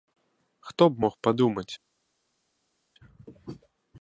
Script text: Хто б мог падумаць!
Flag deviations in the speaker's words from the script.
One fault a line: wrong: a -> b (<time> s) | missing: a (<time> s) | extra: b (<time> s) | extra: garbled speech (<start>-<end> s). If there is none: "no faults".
no faults